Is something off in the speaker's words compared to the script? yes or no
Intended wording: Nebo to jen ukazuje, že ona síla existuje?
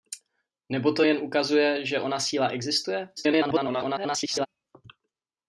yes